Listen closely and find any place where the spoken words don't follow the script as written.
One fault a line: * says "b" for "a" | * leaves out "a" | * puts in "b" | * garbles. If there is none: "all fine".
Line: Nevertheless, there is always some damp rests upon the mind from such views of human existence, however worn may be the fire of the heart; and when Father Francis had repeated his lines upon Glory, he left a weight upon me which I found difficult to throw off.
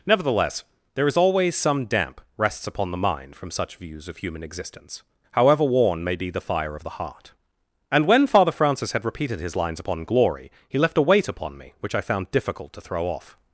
all fine